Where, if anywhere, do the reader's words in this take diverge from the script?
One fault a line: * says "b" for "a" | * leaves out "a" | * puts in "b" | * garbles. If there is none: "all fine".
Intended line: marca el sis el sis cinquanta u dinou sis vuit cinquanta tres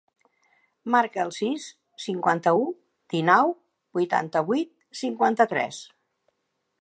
* leaves out "el sis"
* says "vuitanta" for "sis"